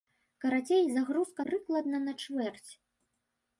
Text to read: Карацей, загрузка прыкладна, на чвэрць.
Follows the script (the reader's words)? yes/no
yes